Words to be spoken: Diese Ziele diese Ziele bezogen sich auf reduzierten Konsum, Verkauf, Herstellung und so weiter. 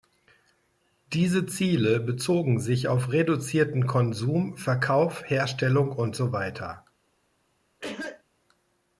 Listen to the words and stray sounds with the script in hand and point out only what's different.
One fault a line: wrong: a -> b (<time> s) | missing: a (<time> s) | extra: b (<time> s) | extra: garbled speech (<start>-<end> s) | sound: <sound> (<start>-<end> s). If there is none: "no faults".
missing: diese Ziele (2.0 s)
sound: cough (7.8-8.2 s)